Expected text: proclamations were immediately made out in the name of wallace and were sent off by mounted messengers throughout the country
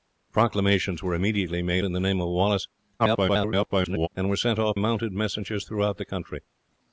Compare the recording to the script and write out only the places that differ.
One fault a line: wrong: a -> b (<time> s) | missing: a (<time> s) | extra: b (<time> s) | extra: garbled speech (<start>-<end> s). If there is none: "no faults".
missing: out (1.9 s)
extra: garbled speech (3.0-4.1 s)
missing: by (4.8 s)